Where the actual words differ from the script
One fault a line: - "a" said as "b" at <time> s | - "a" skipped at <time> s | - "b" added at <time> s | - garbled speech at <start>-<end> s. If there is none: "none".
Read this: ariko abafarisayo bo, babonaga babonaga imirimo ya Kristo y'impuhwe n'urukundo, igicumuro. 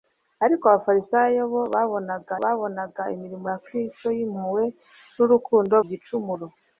none